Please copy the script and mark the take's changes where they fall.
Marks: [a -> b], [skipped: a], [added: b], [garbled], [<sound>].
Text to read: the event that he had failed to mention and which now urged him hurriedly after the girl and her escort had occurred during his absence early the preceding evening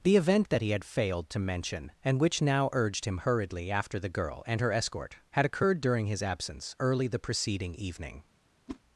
the event that he had failed to mention and which now urged him hurriedly after the girl and her escort had occurred during his absence early the preceding evening [whoosh]